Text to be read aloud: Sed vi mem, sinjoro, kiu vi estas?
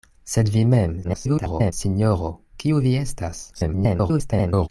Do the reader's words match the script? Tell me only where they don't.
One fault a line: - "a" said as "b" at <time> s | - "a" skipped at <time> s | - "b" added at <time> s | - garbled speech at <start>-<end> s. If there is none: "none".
- garbled speech at 1.0-1.7 s
- garbled speech at 3.5-4.7 s